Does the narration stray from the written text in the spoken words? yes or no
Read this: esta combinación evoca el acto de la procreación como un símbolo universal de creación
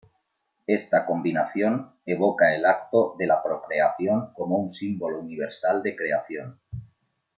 no